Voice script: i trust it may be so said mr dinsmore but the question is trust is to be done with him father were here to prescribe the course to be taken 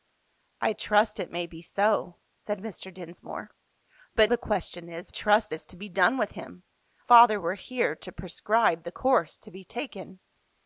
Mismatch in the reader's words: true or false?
false